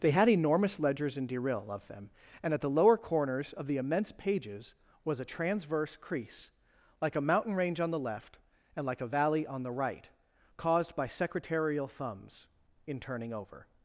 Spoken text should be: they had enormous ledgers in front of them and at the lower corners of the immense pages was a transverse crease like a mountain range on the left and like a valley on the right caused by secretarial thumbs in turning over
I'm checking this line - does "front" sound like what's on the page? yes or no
no